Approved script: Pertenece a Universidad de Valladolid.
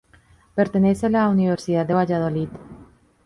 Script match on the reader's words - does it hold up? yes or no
no